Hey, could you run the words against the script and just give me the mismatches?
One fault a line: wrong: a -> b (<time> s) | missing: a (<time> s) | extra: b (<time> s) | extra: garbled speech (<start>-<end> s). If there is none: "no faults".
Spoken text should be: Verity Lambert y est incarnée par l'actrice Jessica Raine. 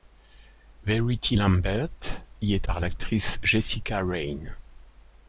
missing: incarnée (2.7 s)